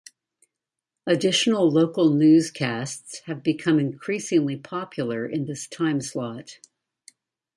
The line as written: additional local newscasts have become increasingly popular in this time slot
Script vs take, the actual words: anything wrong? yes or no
no